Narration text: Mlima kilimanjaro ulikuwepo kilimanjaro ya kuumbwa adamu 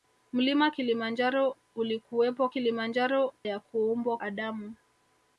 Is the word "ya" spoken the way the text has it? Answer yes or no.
yes